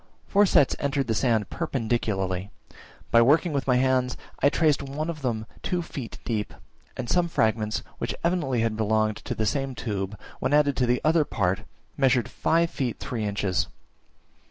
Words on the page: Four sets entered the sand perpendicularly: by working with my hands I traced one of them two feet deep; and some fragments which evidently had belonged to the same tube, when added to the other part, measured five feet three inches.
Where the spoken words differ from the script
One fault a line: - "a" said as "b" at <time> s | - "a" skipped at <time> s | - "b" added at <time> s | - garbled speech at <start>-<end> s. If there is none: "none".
none